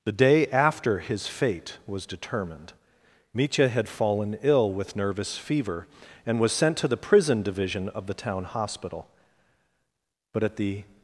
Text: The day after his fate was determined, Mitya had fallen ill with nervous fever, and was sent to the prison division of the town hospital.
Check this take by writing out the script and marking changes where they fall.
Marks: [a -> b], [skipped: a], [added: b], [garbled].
The day after his fate was determined, Mitya had fallen ill with nervous fever, and was sent to the prison division of the town hospital. [added: But at the]